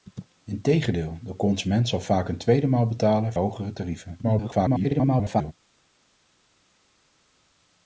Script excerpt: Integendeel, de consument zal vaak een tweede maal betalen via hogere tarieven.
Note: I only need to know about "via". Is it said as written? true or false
false